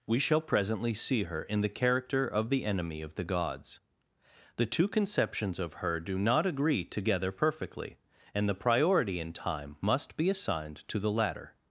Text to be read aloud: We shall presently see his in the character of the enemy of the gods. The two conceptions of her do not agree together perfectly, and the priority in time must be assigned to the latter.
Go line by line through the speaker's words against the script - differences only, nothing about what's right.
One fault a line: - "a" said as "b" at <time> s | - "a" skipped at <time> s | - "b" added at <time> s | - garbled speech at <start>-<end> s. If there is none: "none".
- "his" said as "her" at 1.2 s